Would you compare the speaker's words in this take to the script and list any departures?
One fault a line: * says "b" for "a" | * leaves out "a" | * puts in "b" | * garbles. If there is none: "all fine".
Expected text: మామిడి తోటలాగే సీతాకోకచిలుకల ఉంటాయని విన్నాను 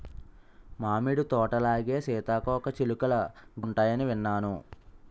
all fine